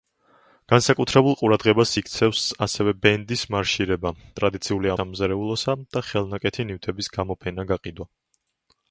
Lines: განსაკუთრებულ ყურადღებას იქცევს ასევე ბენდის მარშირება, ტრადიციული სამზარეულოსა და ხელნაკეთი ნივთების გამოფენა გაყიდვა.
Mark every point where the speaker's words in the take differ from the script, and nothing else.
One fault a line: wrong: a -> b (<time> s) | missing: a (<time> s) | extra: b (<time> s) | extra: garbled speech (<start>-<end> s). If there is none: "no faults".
no faults